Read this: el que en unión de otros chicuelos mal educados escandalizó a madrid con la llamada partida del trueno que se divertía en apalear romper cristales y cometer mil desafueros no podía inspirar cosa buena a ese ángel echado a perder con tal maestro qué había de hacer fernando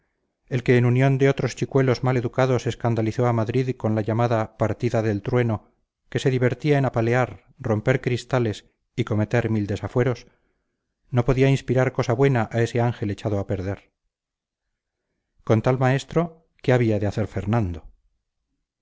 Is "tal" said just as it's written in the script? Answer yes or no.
yes